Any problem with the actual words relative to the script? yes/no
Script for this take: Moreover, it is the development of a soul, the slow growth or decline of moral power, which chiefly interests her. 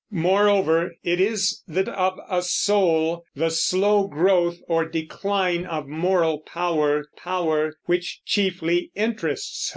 yes